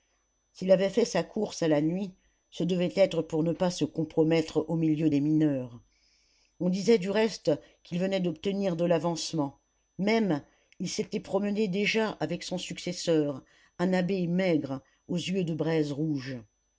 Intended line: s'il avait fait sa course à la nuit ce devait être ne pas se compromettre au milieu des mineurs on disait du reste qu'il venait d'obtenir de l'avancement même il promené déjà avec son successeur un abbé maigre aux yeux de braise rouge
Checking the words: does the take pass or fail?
fail